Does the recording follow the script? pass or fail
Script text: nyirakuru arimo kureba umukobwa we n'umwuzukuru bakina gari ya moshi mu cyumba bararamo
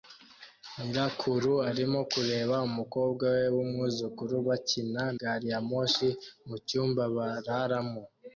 pass